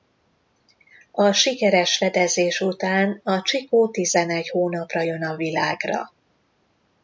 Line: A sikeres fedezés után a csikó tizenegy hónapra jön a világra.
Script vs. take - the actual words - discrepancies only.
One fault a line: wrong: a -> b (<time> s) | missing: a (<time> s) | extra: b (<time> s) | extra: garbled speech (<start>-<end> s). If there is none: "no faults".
no faults